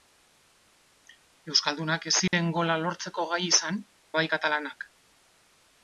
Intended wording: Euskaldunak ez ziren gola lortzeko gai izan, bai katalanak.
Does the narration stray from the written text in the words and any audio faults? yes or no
yes